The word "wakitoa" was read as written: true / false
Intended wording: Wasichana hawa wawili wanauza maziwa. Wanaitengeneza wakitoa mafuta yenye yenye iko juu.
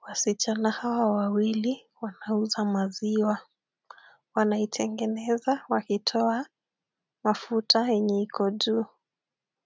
true